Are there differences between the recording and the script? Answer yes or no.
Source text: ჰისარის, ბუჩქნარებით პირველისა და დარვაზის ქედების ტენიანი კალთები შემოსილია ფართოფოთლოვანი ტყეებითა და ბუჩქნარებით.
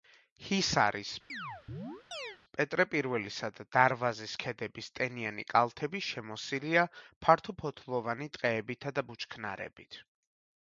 yes